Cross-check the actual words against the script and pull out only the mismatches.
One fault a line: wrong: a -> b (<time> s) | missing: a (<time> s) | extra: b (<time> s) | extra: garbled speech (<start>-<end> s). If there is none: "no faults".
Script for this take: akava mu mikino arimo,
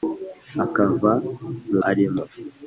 missing: mikino (1.8 s)